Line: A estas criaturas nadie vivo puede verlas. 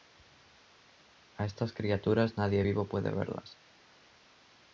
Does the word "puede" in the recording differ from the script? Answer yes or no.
no